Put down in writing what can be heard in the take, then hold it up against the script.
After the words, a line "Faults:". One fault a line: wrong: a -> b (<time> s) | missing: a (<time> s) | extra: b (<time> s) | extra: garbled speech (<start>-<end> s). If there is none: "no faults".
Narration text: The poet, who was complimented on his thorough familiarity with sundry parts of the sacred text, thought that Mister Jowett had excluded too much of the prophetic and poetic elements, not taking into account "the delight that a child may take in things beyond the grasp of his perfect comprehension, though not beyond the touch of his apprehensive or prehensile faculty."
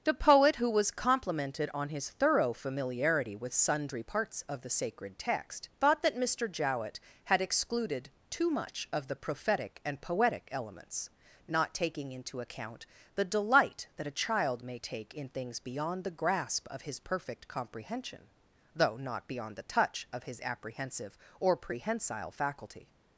The poet, who was complimented on his thorough familiarity with sundry parts of the sacred text, thought that Mister Jowett had excluded too much of the prophetic and poetic elements, not taking into account "the delight that a child may take in things beyond the grasp of his perfect comprehension, though not beyond the touch of his apprehensive or prehensile faculty."
Faults:
no faults